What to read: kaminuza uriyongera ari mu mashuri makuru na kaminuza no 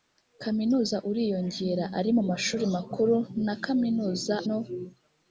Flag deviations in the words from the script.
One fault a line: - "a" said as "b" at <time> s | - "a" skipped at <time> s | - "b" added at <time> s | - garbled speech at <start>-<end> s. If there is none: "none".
none